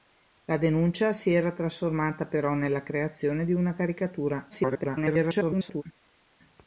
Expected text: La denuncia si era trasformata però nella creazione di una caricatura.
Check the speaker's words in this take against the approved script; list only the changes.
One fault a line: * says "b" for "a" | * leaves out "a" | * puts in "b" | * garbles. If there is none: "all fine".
* garbles